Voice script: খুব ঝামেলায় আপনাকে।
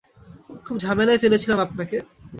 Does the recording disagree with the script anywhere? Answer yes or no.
yes